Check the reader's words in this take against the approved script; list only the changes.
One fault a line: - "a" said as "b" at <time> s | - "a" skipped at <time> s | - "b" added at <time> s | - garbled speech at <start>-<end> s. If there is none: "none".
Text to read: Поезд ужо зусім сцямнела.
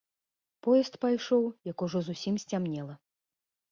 - "пайшоў як" added at 1.0 s